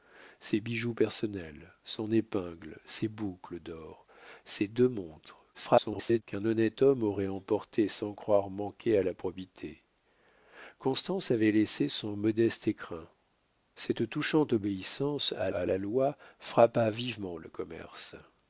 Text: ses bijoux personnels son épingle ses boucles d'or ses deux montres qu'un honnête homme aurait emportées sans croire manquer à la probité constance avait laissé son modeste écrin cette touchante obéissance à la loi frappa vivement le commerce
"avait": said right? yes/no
yes